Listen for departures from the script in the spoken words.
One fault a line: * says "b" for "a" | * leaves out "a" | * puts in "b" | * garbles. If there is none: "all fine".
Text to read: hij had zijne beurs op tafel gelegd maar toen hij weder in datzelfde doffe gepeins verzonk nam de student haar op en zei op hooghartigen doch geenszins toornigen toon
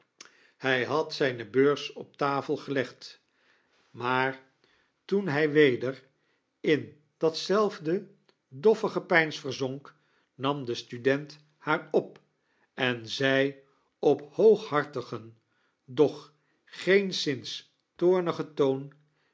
all fine